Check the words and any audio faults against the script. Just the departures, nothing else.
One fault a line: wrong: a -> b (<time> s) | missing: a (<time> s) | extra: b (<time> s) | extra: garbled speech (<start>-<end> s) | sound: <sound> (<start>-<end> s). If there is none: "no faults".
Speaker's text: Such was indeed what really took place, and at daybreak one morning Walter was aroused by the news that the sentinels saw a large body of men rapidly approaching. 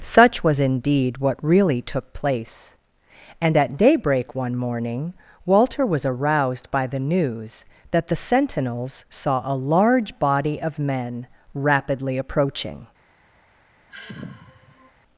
sound: sigh (13.9-14.9 s)